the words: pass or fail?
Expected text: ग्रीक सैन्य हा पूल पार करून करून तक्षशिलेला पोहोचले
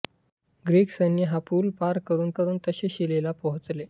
pass